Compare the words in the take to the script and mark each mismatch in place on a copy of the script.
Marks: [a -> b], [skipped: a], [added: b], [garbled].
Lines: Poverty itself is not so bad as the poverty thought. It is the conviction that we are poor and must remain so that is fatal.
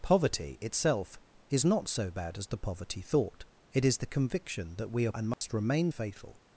Poverty itself is not so bad as the poverty thought. It is the conviction that we are [skipped: poor] and must remain [skipped: so that is] fatal.